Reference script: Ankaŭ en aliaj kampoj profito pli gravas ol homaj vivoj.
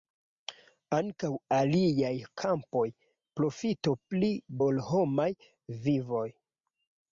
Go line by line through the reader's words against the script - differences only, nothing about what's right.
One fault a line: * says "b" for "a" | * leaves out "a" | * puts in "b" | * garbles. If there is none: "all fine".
* leaves out "en"
* leaves out "gravas"